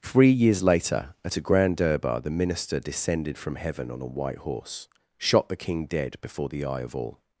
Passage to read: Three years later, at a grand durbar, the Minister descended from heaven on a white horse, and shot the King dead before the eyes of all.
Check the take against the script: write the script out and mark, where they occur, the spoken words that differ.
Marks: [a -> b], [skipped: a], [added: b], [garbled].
Three years later, at a grand durbar, the Minister descended from heaven on a white horse, [skipped: and] shot the King dead before the [eyes -> eye] of all.